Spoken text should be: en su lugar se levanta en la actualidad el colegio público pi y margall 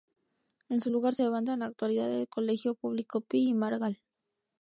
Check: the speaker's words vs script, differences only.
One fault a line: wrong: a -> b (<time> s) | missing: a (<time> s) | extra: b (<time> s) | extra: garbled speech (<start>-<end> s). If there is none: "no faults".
missing: se (1.2 s)